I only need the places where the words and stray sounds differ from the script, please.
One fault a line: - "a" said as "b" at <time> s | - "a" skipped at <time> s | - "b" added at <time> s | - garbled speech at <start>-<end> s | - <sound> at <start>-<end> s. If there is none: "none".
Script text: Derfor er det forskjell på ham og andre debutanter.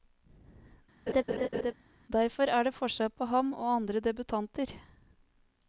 - laugh at 1.1-1.7 s